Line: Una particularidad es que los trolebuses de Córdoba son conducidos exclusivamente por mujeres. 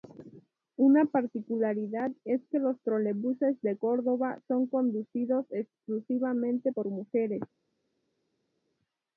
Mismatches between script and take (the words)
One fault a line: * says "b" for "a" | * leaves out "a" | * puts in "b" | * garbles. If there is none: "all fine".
all fine